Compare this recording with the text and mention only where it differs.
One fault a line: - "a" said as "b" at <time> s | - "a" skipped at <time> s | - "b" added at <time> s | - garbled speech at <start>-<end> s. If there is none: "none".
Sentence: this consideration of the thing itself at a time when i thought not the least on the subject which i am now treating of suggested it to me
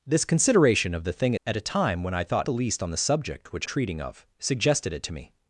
- "itself" skipped at 1.3 s
- "not" skipped at 2.5 s
- "i am now" skipped at 3.7 s